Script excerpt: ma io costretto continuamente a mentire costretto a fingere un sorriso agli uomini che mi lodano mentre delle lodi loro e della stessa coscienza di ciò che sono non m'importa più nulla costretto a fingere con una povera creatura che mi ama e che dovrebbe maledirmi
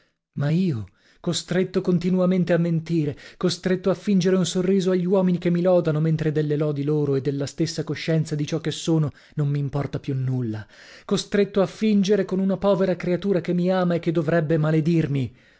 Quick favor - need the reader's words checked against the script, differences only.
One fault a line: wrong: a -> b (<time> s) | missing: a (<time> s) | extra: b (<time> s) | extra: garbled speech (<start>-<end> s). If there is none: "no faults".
no faults